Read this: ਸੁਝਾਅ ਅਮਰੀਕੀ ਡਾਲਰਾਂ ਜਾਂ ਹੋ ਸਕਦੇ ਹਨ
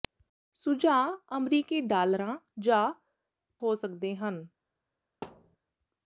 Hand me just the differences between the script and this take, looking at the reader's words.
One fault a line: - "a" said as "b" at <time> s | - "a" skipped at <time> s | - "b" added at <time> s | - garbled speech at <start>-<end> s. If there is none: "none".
none